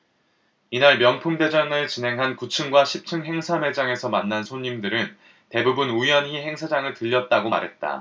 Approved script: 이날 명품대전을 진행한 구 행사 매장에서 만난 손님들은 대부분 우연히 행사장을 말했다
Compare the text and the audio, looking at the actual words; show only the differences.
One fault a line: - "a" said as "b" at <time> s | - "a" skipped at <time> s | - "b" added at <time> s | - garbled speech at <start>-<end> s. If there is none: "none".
- "층과 십 층" added at 2.5 s
- "들렀다고" added at 6.9 s